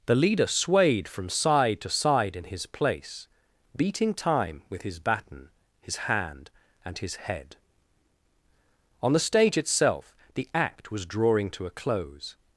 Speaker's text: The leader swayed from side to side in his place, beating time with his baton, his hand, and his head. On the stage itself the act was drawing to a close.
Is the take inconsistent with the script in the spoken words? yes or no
no